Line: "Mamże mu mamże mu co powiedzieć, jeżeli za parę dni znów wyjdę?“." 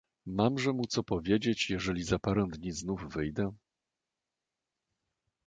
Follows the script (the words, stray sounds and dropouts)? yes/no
no